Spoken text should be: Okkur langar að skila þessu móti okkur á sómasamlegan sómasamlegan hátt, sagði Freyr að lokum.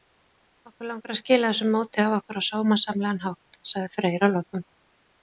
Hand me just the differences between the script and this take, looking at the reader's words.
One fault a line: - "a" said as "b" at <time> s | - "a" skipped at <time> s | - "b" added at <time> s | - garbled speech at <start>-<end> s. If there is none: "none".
- "af" added at 2.0 s
- "sómasamlegan" skipped at 3.2 s